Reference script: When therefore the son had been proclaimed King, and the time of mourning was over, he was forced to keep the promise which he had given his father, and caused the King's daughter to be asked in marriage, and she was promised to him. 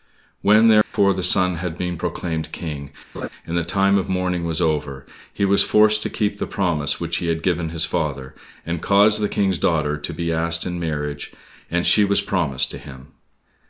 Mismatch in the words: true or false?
false